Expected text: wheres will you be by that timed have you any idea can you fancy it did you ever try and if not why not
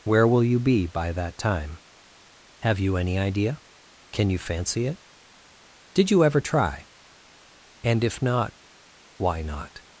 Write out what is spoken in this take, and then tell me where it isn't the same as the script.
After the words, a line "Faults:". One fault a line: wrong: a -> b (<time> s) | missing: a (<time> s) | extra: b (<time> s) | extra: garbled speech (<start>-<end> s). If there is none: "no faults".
where will you be by that time have you any idea can you fancy it did you ever try and if not why not
Faults:
wrong: wheres -> where (0.0 s)
wrong: timed -> time (1.4 s)